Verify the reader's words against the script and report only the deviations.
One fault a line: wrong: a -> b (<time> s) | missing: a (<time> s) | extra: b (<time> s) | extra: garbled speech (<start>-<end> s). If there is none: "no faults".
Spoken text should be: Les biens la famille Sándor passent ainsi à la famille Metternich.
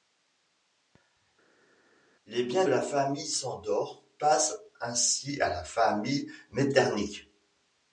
no faults